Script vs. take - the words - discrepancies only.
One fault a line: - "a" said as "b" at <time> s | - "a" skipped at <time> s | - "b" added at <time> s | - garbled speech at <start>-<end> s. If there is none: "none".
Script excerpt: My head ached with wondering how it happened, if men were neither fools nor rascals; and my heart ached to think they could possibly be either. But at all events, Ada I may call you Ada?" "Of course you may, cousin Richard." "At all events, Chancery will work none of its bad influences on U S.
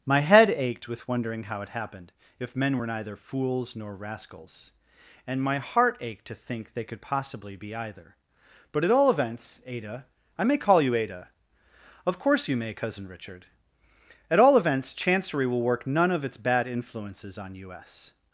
none